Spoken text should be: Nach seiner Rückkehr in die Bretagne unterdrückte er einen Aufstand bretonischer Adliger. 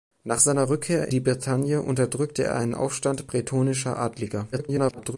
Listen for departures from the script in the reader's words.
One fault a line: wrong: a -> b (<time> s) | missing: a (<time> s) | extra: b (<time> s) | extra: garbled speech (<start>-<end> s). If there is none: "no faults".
missing: in (1.1 s)
extra: garbled speech (4.5-5.2 s)